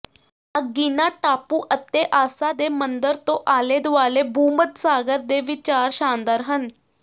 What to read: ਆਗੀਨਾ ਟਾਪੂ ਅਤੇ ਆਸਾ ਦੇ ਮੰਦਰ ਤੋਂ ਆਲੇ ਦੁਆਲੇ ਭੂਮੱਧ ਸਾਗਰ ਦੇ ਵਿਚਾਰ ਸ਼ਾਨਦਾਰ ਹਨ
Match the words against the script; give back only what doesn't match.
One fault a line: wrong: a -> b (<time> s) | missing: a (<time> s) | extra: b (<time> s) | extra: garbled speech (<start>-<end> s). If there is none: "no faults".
no faults